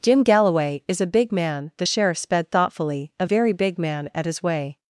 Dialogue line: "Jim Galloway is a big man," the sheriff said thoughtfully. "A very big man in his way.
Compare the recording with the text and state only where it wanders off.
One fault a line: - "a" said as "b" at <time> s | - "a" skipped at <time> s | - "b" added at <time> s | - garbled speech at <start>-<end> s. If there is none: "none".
- "said" said as "sped" at 2.2 s
- "in" said as "at" at 4.1 s